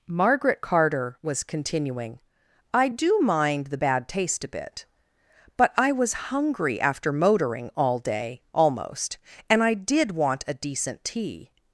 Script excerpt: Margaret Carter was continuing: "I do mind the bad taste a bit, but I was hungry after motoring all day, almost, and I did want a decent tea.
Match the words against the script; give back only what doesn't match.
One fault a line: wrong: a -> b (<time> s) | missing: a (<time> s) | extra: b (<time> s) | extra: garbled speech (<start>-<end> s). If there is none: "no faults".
no faults